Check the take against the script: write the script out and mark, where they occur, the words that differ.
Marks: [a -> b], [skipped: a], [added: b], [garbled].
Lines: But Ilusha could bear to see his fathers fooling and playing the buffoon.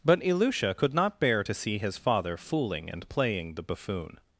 But Ilusha could [added: not] bear to see his [fathers -> father] fooling and playing the buffoon.